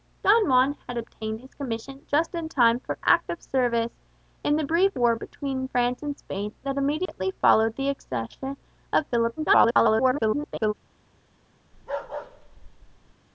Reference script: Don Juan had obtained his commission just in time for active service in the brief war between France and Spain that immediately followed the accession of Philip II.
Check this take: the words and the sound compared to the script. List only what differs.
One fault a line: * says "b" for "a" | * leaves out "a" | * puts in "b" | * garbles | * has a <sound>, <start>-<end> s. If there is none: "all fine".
* has a dropout, 7.1-7.1 s
* garbles
* has a bark, 11.7-13.1 s